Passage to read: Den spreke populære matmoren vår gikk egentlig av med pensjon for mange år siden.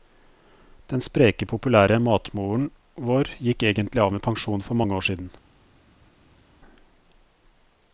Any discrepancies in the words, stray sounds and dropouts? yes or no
no